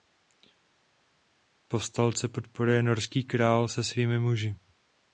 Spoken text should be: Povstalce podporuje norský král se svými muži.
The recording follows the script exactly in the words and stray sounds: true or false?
true